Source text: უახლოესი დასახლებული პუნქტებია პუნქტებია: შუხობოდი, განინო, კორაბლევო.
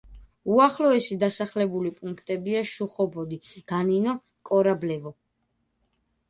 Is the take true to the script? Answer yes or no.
no